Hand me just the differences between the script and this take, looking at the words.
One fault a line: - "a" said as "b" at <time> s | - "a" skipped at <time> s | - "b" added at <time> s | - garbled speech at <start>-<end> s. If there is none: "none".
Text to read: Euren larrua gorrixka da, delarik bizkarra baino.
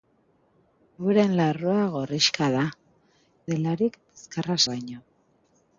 none